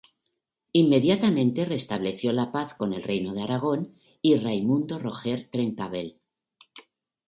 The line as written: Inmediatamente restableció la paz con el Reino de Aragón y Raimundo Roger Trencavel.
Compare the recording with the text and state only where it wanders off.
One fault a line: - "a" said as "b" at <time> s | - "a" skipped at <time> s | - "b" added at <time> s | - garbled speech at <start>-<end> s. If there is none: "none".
none